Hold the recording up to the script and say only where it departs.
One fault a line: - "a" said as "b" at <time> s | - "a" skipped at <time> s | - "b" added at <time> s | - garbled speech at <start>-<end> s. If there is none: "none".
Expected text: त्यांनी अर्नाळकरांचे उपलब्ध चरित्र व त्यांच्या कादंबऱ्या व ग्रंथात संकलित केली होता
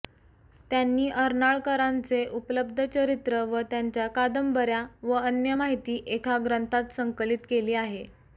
- "अन्य माहिती एका" added at 5.2 s
- "होता" said as "आहे" at 7.7 s